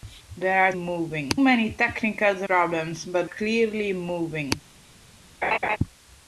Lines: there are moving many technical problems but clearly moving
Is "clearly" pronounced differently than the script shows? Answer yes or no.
no